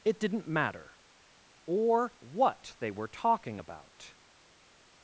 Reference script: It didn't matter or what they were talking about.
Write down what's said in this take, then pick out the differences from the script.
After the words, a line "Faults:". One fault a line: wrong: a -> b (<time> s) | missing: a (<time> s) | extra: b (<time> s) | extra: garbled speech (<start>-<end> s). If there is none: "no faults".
It didn't matter or what they were talking about.
Faults:
no faults